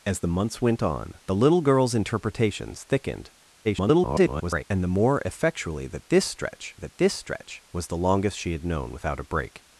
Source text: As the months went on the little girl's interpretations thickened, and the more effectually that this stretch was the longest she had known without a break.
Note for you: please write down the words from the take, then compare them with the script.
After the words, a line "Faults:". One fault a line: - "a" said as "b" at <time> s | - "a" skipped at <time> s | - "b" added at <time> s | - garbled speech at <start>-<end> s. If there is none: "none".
As the months went on the little girl's interpretations thickened, [garbled] and the more effectually that this stretch that this stretch was the longest she had known without a break.
Faults:
- garbled speech at 3.6-4.6 s
- "that this stretch" added at 6.8 s